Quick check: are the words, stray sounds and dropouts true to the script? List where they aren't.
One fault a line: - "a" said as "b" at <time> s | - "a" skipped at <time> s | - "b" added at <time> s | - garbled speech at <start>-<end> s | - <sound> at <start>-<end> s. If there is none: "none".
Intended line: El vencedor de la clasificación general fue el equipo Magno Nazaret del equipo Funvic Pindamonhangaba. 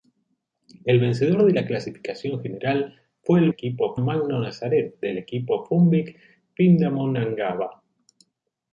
none